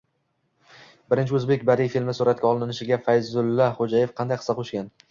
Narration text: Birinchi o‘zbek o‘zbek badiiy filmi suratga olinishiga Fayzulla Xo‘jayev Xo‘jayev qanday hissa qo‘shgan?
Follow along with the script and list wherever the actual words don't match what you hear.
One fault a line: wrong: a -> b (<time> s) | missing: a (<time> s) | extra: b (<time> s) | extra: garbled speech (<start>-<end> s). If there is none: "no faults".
missing: o‘zbek (1.7 s)
missing: Xo‘jayev (4.2 s)